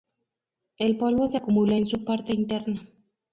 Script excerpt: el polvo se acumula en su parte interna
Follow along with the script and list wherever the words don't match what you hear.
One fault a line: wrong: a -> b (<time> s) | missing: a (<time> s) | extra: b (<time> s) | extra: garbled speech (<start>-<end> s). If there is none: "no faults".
no faults